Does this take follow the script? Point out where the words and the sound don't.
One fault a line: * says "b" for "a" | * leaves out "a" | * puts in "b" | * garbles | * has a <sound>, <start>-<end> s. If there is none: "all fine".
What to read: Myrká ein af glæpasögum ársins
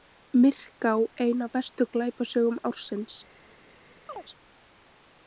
* puts in "bestu"
* has a chirp, 4.1-4.2 s